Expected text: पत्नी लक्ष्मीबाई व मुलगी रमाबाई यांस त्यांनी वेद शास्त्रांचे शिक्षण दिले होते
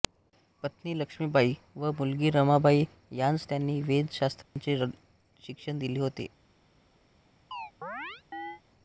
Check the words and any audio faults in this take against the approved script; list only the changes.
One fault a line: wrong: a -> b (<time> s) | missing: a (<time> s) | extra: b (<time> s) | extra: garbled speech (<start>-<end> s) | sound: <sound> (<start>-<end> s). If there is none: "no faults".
sound: dropout (4.4-4.6 s)
sound: chirp (7.5-8.6 s)